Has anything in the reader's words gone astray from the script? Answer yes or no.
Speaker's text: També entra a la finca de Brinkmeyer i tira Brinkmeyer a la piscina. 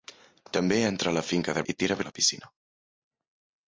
yes